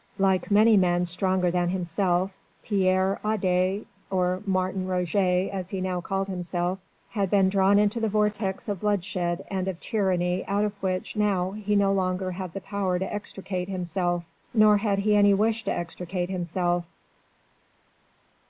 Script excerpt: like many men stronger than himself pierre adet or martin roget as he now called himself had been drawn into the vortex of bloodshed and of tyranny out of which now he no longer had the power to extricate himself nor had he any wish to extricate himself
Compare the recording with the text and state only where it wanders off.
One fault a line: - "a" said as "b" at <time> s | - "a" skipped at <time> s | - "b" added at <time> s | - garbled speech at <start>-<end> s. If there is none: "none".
none